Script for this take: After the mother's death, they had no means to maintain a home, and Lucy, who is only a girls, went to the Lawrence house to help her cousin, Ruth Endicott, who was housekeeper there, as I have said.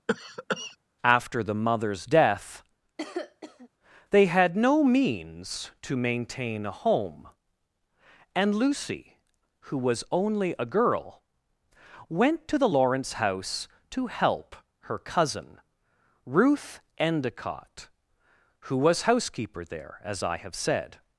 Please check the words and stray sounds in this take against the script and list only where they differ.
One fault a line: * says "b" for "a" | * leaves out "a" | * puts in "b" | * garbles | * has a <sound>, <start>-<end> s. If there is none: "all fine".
* has a cough, 0.1-0.8 s
* has a cough, 3.0-3.7 s
* says "was" for "is"
* says "girl" for "girls"